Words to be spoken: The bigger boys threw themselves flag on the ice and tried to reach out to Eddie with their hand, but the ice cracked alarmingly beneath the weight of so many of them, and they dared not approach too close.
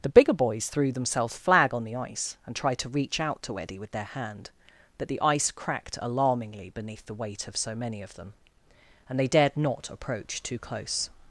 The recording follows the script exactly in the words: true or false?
true